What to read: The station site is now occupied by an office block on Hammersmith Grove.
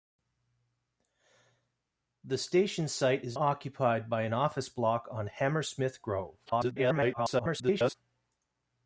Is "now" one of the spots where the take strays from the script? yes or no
yes